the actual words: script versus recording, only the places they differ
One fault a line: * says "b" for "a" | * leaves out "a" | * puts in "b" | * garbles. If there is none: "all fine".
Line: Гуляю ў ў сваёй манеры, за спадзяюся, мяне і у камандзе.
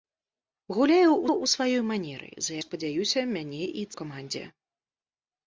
all fine